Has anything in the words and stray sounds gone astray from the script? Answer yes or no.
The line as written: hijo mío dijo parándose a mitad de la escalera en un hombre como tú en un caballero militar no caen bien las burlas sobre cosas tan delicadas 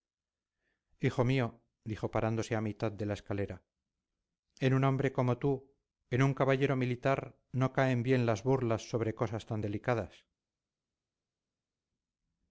no